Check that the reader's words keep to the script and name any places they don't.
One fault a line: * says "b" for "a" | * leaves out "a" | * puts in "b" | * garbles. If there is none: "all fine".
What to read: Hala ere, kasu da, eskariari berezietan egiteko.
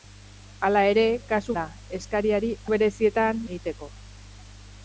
all fine